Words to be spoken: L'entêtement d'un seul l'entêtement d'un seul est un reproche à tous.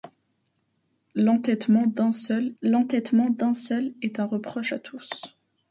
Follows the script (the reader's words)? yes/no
yes